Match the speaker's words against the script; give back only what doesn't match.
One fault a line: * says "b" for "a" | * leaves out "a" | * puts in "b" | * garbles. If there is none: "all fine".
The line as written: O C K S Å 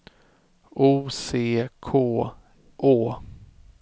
* leaves out "S"